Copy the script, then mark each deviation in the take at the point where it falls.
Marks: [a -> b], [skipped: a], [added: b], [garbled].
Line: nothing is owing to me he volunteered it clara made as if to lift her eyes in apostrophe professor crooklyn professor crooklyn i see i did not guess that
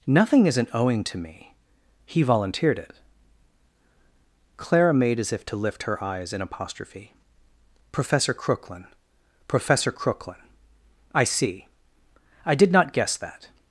nothing [is -> isn't] owing to me he volunteered it clara made as if to lift her eyes in apostrophe professor crooklyn professor crooklyn i see i did not guess that